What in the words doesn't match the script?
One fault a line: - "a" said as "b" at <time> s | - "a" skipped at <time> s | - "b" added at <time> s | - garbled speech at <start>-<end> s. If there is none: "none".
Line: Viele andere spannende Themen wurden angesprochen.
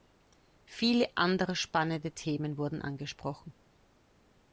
none